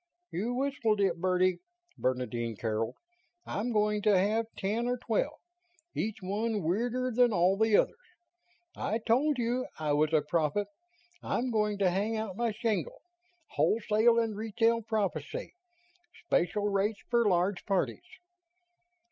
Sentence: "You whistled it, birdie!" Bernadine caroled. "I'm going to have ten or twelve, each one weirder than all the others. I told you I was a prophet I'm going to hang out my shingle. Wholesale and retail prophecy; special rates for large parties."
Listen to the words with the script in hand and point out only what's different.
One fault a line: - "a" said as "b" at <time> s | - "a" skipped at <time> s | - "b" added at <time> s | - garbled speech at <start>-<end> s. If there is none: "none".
none